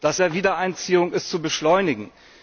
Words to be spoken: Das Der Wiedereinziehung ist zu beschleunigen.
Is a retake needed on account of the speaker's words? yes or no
no